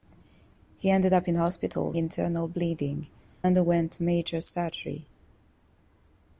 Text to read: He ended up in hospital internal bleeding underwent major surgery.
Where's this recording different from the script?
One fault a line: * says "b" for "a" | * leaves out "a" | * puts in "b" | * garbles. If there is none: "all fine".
all fine